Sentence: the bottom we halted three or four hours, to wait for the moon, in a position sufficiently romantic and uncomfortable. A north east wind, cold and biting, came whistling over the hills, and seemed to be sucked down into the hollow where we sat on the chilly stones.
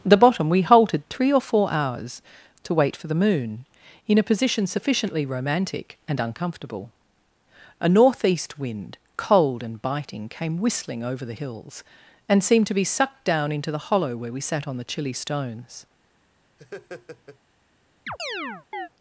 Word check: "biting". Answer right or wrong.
right